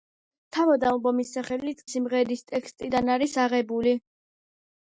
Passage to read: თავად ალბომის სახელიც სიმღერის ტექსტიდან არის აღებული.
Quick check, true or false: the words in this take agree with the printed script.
true